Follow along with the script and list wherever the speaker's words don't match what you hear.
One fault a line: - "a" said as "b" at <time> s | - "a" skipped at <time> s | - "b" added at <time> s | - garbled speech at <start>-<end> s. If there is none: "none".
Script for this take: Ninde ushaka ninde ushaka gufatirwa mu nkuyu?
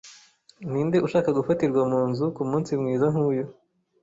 - "ninde ushaka gufatirwa mu" said as "gufatirwa mu nzu kumunsi mwiza" at 1.4 s